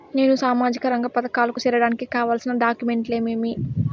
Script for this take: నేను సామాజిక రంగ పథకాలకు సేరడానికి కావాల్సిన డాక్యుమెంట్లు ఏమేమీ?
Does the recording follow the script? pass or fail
pass